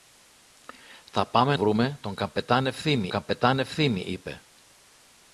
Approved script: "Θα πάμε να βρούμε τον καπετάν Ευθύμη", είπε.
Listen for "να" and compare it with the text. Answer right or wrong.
wrong